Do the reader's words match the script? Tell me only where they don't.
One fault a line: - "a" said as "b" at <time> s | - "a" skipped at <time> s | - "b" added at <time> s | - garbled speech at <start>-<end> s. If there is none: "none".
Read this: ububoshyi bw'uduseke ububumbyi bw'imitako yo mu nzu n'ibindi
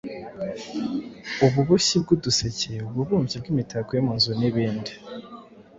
none